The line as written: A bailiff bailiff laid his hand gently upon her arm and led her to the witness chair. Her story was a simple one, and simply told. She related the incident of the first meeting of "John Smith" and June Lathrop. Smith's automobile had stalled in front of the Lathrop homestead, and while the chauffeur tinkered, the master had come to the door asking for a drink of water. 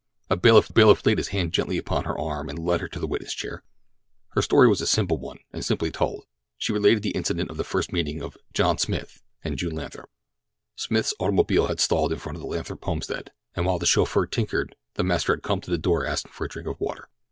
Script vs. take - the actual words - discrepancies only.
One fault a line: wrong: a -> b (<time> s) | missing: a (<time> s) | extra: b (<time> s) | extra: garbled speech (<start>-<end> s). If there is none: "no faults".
no faults